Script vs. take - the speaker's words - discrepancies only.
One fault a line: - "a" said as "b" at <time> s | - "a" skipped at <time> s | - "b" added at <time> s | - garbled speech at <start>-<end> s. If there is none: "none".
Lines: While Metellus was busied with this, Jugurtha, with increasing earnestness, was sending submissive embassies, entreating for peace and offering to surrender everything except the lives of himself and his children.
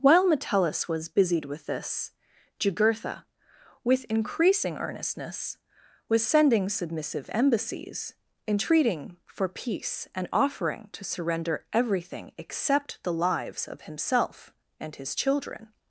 none